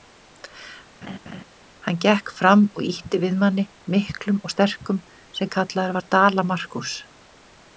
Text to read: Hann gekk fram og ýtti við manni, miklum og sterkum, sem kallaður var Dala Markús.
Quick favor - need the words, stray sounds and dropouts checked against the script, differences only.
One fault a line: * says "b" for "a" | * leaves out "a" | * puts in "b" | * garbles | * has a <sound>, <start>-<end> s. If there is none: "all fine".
* has a laugh, 1.0-1.4 s